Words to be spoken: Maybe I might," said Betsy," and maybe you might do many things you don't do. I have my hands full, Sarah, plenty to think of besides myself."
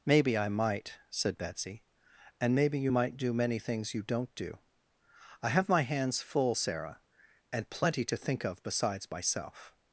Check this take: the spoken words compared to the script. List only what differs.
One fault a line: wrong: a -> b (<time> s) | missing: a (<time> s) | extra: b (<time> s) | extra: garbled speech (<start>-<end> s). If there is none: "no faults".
extra: and (7.5 s)